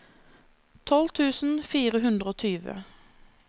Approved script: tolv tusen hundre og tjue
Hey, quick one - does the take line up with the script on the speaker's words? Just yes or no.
no